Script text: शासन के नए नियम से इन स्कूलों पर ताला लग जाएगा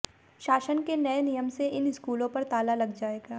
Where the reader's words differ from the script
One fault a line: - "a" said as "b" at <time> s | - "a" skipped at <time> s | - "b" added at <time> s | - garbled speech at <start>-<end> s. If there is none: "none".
none